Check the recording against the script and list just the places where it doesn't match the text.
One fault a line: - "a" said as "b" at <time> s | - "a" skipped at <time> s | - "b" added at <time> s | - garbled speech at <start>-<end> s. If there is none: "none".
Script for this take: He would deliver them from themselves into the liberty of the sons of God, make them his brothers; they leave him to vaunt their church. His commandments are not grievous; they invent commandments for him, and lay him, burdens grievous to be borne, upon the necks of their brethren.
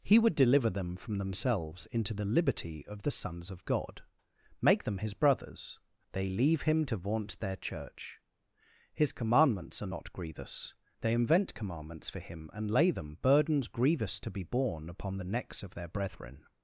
- "him" said as "them" at 12.9 s